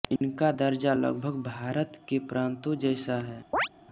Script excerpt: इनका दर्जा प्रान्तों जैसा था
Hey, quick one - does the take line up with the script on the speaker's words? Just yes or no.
no